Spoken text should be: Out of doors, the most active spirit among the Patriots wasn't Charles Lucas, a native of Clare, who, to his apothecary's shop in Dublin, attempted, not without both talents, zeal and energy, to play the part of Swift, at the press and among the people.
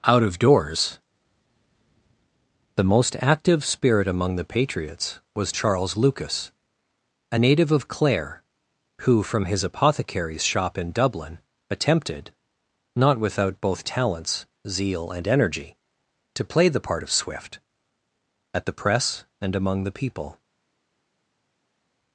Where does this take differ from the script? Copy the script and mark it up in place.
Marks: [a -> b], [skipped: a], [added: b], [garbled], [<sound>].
Out of doors, the most active spirit among the Patriots [wasn't -> was] Charles Lucas, a native of Clare, who, [to -> from] his apothecary's shop in Dublin, attempted, not without both talents, zeal and energy, to play the part of Swift, at the press and among the people.